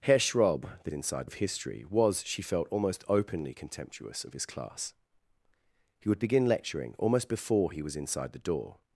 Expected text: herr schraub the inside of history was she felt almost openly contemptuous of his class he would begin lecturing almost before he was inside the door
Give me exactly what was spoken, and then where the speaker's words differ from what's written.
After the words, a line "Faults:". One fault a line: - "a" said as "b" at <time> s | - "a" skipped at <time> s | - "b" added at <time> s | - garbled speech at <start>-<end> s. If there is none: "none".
herr schraub the inside of history was she felt almost openly contemptuous of his class he would begin lecturing almost before he was inside the door
Faults:
none